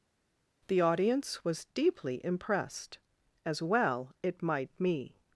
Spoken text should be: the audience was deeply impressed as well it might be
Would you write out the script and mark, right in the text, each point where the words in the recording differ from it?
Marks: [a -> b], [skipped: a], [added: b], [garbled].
the audience was deeply impressed as well it might [be -> me]